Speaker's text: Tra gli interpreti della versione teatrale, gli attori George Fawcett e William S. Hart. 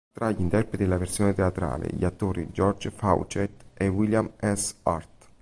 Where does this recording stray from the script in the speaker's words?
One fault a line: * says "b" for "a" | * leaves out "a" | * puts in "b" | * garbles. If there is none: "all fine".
all fine